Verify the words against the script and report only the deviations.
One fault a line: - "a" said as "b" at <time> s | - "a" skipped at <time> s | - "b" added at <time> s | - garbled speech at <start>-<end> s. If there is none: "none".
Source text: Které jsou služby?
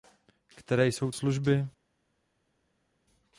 none